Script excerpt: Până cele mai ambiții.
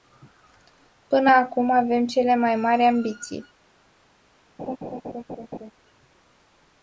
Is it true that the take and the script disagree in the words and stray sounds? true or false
true